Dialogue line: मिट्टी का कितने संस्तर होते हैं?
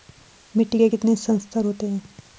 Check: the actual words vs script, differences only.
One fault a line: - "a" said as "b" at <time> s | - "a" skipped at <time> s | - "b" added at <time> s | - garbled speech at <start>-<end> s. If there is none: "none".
- "का" said as "के" at 0.8 s